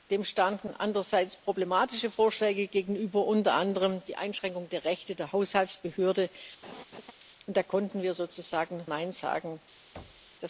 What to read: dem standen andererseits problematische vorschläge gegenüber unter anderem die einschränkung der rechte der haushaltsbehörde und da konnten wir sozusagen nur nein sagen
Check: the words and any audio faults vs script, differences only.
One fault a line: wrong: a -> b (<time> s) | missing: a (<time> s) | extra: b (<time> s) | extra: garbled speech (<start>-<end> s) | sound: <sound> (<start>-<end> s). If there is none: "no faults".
sound: laugh (6.6-7.1 s)
missing: nur (8.8 s)
sound: thud (9.9-10.3 s)